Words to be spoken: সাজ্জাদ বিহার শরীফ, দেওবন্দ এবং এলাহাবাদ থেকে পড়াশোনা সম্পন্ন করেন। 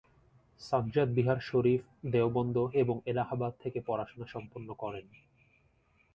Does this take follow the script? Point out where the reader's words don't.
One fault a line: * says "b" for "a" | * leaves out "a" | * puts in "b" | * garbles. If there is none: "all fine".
all fine